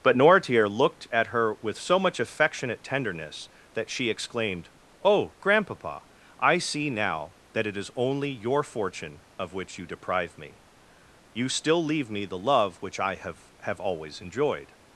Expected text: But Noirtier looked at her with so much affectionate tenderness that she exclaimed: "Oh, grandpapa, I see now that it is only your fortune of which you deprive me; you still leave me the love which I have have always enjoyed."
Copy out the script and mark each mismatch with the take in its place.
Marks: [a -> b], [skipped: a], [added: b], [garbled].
But Noirtier looked at her with so much affectionate tenderness that she exclaimed: "Oh, grandpapa, I see now that it is only your fortune of which you deprive me; you still leave me the love which I have have always enjoyed."